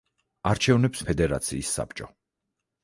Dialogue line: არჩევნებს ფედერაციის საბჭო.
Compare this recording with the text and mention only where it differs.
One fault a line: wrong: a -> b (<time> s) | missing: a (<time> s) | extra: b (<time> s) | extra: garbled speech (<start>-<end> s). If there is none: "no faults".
no faults